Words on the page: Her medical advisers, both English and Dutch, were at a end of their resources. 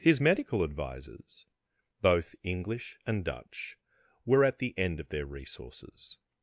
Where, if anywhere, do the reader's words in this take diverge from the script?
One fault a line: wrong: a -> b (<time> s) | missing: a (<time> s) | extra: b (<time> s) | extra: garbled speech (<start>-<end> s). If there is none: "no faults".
wrong: Her -> His (0.0 s)
wrong: a -> the (4.6 s)